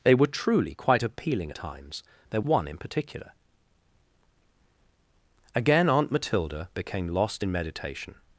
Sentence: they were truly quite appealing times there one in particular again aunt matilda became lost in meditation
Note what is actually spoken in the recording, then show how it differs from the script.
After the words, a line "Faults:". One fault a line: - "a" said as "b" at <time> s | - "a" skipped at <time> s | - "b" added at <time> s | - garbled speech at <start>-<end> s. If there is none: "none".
they were truly quite appealing times there one in particular again aunt matilda became lost in meditation
Faults:
none